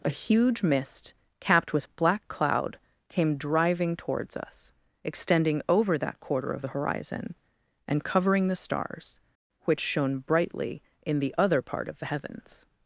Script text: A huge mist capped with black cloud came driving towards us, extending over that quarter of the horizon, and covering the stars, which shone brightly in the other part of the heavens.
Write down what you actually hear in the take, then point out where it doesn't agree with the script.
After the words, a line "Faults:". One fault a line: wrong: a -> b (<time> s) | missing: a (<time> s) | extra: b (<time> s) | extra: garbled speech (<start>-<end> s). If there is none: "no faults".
A huge mist capped with black cloud came driving towards us, extending over that quarter of the horizon, and covering the stars, which shone brightly in the other part of the heavens.
Faults:
no faults